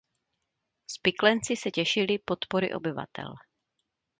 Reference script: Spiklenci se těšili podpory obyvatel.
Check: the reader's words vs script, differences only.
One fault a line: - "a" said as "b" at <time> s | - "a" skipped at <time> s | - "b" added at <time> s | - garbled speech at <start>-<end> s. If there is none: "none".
none